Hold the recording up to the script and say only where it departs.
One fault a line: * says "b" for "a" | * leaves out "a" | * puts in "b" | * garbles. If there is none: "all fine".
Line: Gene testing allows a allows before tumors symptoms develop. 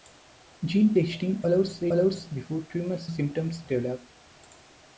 all fine